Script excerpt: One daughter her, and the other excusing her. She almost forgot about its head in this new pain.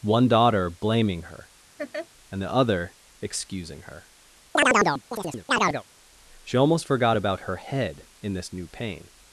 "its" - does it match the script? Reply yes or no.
no